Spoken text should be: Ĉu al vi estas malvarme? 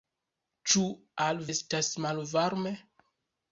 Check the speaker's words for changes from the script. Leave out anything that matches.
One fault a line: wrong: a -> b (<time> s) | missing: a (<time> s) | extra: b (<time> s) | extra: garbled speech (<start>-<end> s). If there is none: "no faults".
missing: vi (1.4 s)